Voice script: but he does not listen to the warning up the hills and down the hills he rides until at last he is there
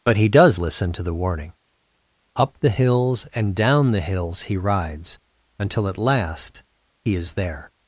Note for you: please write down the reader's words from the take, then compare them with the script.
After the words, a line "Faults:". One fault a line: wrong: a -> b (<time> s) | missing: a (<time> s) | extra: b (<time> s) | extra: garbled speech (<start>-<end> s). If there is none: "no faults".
but he does listen to the warning up the hills and down the hills he rides until at last he is there
Faults:
missing: not (0.6 s)